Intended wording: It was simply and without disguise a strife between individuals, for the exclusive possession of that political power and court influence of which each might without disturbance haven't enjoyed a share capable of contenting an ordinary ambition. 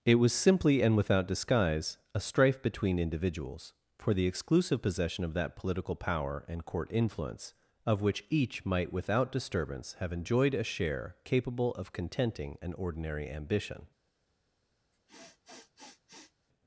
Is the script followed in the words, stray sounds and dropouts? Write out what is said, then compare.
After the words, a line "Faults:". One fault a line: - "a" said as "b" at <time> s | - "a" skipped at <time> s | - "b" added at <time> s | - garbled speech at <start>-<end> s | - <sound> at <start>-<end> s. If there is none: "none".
It was simply and without disguise a strife between individuals, for the exclusive possession of that political power and court influence of which each might without disturbance have enjoyed a share capable of contenting an ordinary ambition.
Faults:
- "haven't" said as "have" at 10.0 s
- sniff at 14.9-16.5 s